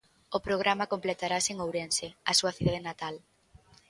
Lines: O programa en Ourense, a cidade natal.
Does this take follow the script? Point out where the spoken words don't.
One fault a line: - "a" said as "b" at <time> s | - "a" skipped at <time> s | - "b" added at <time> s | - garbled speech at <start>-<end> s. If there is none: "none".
- "completarase" added at 0.9 s
- "súa" added at 2.4 s